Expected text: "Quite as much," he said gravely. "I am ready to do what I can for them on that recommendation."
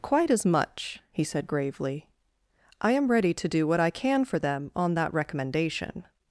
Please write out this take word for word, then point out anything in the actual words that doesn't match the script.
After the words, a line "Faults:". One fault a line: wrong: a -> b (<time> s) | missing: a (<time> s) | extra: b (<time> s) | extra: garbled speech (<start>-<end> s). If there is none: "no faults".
"Quite as much," he said gravely. "I am ready to do what I can for them on that recommendation."
Faults:
no faults